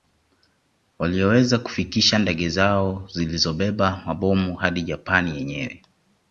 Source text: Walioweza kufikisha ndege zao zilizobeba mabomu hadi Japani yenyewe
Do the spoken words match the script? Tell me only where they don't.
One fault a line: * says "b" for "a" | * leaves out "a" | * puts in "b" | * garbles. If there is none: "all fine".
all fine